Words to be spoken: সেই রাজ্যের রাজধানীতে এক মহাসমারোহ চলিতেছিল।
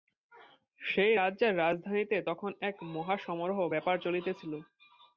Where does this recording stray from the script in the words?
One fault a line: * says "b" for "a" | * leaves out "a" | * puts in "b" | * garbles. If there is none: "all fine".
* puts in "তখন"
* puts in "ব্যাপার"